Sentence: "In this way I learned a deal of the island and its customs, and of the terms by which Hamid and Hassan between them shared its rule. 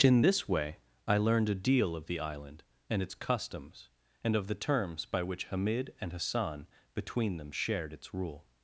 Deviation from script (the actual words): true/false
false